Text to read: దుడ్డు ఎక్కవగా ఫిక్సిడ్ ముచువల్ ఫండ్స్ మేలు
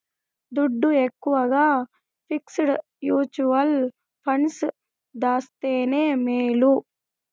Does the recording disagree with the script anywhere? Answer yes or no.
yes